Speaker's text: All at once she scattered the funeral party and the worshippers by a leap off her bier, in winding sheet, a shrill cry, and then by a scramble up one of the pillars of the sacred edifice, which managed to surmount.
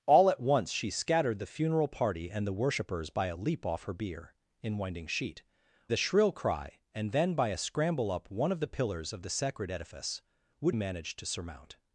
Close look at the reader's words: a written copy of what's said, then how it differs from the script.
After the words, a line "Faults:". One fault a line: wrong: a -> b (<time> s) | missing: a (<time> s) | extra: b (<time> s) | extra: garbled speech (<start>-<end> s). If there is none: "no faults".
All at once she scattered the funeral party and the worshippers by a leap off her bier, in winding sheet, a shrill cry, and then by a scramble up one of the pillars of the sacred edifice, which managed to surmount.
Faults:
no faults